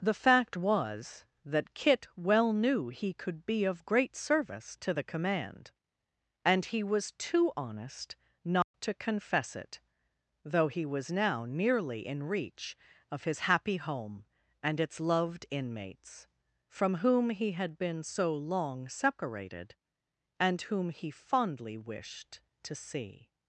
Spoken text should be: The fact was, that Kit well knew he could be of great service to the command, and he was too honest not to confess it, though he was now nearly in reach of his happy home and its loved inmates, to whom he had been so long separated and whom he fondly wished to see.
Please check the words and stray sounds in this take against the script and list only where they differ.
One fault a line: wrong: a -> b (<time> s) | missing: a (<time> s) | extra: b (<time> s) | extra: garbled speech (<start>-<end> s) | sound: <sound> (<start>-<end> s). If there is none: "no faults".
sound: dropout (8.6-8.7 s)
wrong: to -> from (16.7 s)